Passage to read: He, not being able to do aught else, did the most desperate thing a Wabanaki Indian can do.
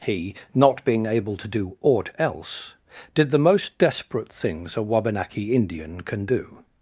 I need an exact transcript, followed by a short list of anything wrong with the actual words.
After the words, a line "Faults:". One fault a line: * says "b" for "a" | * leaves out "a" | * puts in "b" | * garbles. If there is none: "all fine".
He, not being able to do aught else, did the most desperate things a Wabanaki Indian can do.
Faults:
* says "things" for "thing"